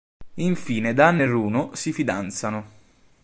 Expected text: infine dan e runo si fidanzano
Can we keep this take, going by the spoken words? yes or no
yes